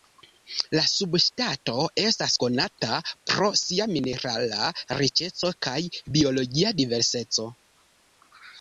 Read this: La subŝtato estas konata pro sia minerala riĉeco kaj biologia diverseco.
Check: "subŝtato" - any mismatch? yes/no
no